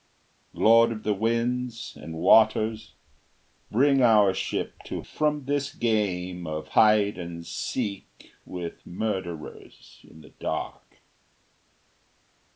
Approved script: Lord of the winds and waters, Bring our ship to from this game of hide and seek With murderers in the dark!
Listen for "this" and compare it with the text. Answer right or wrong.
right